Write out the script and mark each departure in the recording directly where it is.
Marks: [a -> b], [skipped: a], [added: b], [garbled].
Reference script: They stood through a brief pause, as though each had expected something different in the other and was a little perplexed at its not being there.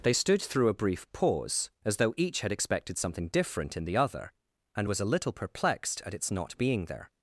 They stood through a brief pause, as though each had expected something different in the other and was a little perplexed at its not being there.